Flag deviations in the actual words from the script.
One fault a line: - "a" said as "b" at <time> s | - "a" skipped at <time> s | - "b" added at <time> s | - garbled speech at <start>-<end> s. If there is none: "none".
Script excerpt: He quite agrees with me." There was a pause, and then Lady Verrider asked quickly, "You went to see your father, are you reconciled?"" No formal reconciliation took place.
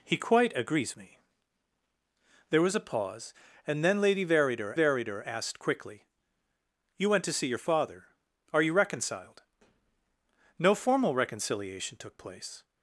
- "with" skipped at 0.9 s
- "Verrider" added at 4.7 s